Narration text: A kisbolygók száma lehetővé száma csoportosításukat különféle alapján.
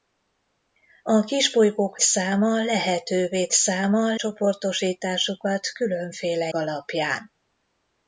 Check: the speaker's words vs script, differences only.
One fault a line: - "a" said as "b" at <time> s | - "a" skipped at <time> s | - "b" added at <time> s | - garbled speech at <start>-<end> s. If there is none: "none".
none